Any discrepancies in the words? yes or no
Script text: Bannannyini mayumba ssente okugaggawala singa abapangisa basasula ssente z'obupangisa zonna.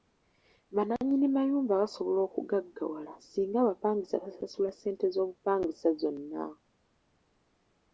yes